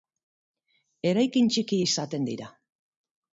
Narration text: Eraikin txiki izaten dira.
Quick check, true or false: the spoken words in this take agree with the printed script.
true